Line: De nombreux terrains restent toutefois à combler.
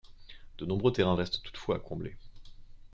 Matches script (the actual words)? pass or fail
pass